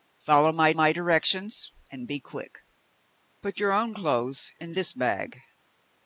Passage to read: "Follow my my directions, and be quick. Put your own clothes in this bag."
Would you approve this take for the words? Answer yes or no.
yes